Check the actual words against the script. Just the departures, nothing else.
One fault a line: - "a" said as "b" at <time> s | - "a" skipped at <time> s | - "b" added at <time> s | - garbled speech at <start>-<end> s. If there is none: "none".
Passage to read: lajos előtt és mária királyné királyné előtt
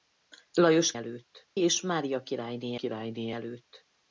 none